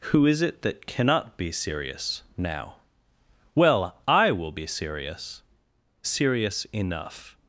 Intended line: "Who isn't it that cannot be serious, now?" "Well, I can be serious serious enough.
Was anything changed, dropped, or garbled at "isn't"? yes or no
yes